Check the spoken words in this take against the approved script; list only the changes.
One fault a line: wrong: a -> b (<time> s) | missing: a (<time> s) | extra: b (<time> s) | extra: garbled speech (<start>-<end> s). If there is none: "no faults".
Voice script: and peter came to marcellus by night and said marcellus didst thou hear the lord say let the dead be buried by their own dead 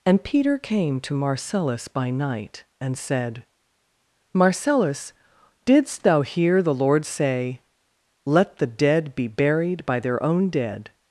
no faults